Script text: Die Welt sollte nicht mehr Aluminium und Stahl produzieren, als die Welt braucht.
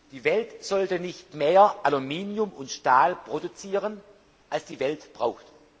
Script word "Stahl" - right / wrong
right